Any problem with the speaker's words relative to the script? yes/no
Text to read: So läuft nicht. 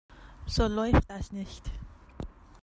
yes